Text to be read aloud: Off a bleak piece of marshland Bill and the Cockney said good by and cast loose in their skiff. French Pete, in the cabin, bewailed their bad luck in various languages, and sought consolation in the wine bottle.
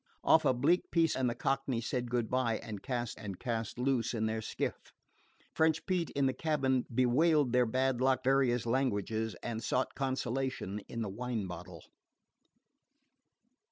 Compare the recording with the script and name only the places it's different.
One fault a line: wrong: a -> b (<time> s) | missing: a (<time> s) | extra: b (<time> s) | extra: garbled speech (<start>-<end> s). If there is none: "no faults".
missing: of marshland Bill (1.1 s)
extra: and cast (3.1 s)
missing: in (8.3 s)